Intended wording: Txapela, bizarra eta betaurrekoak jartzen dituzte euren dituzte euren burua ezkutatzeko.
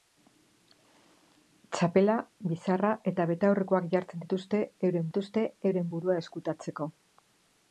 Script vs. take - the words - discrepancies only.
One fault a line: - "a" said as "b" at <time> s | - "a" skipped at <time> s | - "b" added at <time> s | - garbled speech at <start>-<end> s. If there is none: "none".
none